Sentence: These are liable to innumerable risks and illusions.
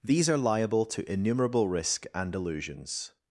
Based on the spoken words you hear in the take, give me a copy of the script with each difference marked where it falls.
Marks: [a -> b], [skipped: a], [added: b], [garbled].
These are liable to innumerable [risks -> risk] and illusions.